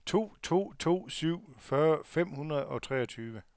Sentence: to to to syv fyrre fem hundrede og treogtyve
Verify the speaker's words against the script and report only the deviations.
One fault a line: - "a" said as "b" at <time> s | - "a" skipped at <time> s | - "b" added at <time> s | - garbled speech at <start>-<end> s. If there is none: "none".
none